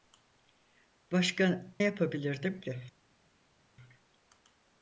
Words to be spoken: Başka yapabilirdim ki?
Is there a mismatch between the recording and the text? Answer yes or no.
no